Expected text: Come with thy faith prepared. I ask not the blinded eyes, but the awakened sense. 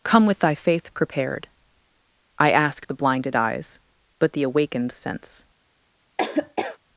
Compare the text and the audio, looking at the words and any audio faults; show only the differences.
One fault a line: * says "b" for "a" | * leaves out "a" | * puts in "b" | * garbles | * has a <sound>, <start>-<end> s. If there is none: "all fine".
* leaves out "not"
* has a laugh, 6.2-6.8 s